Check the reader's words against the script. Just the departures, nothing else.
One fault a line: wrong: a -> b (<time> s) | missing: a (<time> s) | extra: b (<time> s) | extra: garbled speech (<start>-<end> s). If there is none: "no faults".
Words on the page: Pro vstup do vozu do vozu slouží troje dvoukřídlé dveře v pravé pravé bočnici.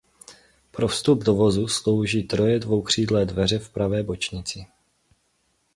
missing: do vozu (1.7 s)
missing: pravé (4.0 s)